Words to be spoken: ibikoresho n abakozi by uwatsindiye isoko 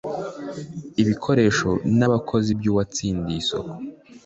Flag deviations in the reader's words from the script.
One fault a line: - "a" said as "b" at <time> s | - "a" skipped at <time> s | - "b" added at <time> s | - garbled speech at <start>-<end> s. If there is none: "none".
none